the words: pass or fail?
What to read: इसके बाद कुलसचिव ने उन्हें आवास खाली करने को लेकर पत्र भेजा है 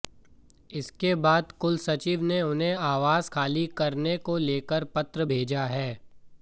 pass